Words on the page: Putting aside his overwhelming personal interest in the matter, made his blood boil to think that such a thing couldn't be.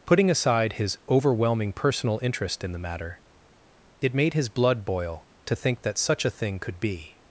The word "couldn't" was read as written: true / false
false